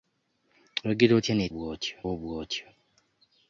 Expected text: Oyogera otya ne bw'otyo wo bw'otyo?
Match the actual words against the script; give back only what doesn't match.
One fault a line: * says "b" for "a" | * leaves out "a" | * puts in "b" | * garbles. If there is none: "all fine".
all fine